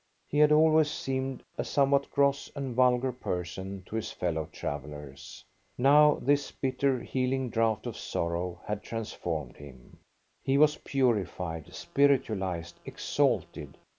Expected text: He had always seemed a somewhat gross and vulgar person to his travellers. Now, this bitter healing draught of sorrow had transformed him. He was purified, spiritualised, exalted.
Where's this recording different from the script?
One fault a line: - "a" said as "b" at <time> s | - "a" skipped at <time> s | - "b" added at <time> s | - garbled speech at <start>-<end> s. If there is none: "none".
- "fellow" added at 4.1 s